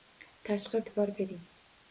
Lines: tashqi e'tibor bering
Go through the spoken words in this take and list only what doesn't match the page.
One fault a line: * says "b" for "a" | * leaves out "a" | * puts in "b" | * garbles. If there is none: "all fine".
all fine